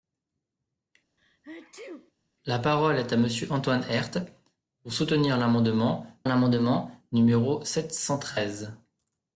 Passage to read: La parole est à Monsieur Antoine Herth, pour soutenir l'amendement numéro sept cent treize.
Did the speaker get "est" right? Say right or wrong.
right